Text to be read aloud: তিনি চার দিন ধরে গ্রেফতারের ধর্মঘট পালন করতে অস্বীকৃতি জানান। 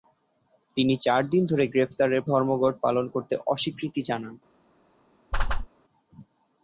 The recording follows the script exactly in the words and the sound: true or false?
false